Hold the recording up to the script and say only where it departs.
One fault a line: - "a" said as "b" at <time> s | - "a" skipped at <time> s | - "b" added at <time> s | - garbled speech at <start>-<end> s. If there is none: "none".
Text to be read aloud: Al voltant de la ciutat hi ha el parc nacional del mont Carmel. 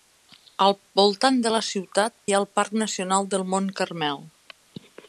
none